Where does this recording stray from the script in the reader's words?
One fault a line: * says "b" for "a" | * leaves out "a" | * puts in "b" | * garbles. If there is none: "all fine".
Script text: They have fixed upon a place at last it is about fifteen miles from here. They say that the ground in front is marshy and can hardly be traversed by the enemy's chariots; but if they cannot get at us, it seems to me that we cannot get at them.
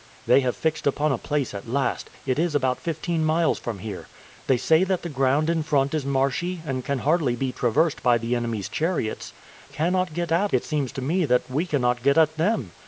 * leaves out "but if they"
* leaves out "us"